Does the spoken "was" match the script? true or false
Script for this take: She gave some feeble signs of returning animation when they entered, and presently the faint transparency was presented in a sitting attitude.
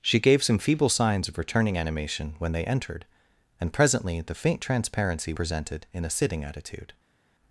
false